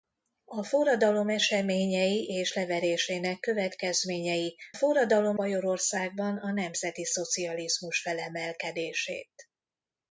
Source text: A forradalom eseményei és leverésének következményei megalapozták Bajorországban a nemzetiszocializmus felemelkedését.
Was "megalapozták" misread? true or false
true